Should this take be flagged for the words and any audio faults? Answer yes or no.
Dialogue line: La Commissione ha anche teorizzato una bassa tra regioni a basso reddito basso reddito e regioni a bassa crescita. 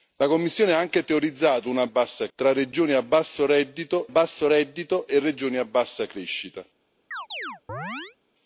yes